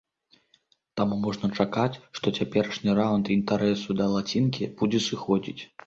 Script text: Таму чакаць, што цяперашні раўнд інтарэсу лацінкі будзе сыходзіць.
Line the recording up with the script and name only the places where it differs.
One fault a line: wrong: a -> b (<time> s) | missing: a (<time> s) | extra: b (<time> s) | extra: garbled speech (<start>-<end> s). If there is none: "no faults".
extra: можна (1.2 s)
extra: да (4.0 s)